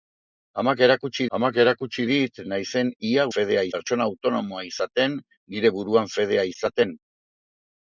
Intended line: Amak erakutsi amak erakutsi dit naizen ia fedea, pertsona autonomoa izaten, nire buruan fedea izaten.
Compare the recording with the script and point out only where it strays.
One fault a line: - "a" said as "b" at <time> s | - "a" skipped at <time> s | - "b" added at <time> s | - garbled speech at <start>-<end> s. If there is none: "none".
none